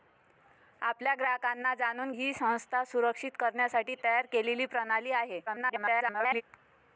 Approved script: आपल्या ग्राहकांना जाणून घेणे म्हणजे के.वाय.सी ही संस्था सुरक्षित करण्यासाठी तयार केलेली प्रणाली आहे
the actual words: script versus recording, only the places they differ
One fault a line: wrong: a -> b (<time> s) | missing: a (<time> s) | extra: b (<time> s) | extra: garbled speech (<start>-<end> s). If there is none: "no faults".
missing: घेणे म्हणजे के.वाय.सी (2.1 s)
extra: garbled speech (5.5-6.4 s)